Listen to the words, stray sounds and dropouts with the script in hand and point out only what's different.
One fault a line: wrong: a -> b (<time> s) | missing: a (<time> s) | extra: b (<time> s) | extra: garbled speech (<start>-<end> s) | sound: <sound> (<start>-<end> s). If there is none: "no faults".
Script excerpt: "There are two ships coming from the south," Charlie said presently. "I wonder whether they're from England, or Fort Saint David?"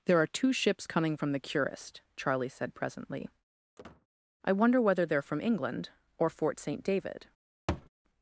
wrong: south -> curist (1.4 s)
sound: squeak (3.8-4.1 s)
sound: thud (7.7-7.9 s)